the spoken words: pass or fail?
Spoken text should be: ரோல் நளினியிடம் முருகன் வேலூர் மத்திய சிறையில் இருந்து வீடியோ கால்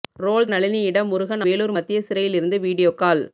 pass